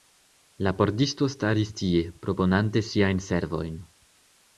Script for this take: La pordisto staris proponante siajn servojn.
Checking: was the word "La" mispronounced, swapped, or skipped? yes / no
no